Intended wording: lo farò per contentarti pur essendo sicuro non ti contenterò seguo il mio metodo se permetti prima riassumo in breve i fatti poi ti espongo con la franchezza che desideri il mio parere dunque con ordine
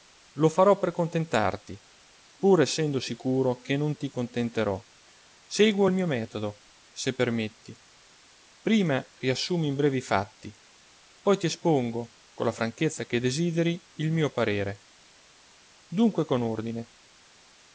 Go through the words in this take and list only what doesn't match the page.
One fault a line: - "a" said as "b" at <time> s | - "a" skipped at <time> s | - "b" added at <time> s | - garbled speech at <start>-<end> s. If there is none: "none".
- "che" added at 3.6 s